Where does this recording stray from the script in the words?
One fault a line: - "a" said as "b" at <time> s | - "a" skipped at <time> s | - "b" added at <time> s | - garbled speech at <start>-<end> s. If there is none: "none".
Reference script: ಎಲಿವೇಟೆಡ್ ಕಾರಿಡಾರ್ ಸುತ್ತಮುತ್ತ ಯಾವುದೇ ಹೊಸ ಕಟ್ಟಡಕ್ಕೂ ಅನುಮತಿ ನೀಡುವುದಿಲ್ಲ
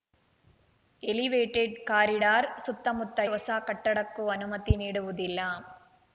- "ಯಾವುದೇ" skipped at 3.2 s